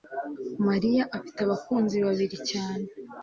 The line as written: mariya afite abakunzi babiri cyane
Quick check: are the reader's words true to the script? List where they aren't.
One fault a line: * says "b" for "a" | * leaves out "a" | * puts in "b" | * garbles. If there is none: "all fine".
all fine